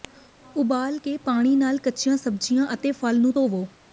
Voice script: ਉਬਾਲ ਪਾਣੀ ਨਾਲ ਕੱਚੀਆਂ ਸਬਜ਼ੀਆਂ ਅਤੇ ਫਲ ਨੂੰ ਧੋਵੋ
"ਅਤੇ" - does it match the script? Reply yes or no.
yes